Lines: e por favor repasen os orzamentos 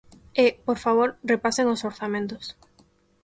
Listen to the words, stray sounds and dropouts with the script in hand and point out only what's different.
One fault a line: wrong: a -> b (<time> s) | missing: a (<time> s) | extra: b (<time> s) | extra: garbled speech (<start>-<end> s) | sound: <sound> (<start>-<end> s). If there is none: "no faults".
no faults